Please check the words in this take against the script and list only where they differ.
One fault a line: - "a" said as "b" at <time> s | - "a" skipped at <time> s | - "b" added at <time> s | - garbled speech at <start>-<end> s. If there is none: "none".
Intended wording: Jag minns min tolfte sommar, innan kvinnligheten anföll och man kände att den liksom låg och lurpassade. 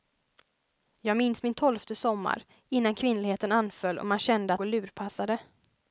- "den liksom låg" skipped at 4.6 s